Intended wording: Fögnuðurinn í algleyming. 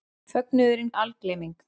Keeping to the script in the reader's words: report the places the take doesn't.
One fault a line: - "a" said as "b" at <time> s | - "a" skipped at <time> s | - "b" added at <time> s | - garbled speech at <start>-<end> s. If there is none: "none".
none